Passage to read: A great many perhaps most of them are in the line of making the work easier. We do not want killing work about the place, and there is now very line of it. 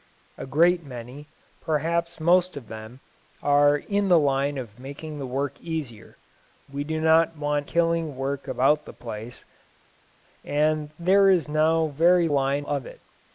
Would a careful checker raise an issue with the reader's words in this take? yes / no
no